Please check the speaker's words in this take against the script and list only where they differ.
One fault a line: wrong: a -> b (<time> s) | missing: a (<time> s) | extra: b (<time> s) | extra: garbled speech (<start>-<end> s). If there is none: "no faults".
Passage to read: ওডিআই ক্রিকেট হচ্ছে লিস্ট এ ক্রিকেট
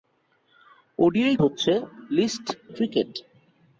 missing: ক্রিকেট (1.4 s)
missing: এ (2.5 s)